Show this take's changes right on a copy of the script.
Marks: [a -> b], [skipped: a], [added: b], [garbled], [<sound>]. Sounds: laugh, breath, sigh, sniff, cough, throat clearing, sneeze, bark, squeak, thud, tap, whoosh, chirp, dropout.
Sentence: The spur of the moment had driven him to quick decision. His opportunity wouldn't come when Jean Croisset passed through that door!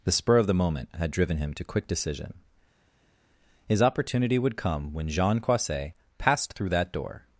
The spur of the moment had driven him to quick decision. His opportunity [wouldn't -> would] come when Jean Croisset passed through that door!